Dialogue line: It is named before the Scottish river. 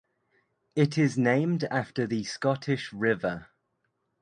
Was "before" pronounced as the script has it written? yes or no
no